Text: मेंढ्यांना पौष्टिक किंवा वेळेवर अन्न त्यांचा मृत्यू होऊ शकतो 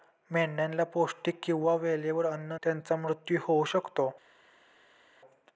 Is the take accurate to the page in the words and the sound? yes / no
yes